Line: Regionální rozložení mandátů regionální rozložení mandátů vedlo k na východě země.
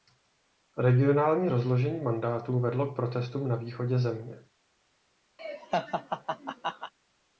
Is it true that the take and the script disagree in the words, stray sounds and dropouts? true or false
true